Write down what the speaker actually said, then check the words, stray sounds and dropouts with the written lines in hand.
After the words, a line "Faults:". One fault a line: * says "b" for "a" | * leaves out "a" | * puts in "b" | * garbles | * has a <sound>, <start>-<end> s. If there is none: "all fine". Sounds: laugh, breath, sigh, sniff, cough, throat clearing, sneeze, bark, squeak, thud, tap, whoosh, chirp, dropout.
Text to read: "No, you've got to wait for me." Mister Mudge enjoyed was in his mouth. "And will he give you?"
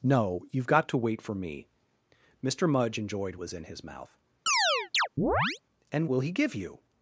"No, you've got to wait for me." Mister Mudge enjoyed was in his mouth. "And will he give you?"
Faults:
* has a chirp, 4.5-5.6 s